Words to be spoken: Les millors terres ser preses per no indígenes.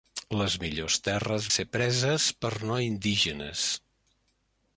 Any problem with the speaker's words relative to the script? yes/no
no